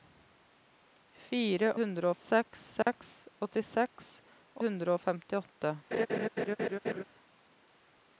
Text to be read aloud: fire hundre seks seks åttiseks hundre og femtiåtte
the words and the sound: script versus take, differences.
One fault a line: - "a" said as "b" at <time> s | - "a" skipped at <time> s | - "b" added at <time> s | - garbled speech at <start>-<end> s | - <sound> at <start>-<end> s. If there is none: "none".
- dropout at 2.8-2.9 s
- laugh at 5.9-7.0 s